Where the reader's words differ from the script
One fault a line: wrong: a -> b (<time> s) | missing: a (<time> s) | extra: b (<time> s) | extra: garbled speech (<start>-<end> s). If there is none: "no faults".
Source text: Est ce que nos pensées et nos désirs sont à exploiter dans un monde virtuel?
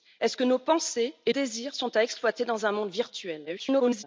missing: nos (1.3 s)
extra: garbled speech (3.5-4.0 s)